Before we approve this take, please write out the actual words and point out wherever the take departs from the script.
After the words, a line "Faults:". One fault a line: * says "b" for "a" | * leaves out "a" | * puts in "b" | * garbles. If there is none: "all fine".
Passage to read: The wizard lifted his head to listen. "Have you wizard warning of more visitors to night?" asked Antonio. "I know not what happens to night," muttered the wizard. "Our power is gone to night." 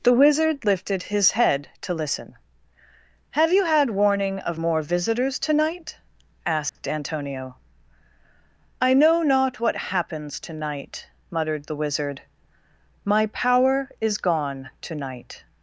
The wizard lifted his head to listen. "Have you had warning of more visitors to night?" asked Antonio. "I know not what happens to night," muttered the wizard. "My power is gone to night."
Faults:
* says "had" for "wizard"
* says "My" for "Our"